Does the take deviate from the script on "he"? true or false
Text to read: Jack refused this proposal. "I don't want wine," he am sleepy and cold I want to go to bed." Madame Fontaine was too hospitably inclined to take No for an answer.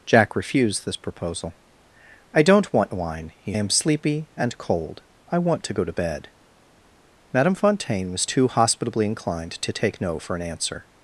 false